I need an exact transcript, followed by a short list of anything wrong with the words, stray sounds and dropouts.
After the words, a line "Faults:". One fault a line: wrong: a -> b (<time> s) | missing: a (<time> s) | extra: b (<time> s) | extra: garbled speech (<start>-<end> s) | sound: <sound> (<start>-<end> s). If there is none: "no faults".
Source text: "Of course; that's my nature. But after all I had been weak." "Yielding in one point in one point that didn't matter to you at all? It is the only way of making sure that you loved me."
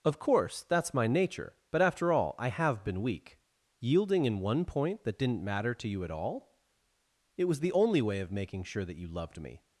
"Of course; that's my nature. But after all I have been weak." "Yielding in one point that didn't matter to you at all? It was the only way of making sure that you loved me."
Faults:
wrong: had -> have (2.5 s)
missing: in one point (5.0 s)
wrong: is -> was (7.5 s)